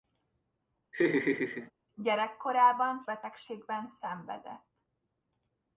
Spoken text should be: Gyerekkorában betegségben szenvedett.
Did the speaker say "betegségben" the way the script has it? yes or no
yes